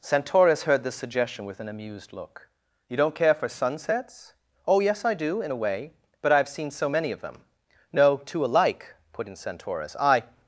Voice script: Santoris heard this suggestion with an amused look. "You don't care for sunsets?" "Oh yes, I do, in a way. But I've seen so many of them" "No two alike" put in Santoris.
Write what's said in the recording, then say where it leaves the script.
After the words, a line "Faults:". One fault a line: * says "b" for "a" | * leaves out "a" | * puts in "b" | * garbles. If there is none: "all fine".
Santoris heard this suggestion with an amused look. "You don't care for sunsets?" "Oh yes, I do, in a way. But I've seen so many of them" "No two alike" put in Santoris. "I
Faults:
* puts in "I"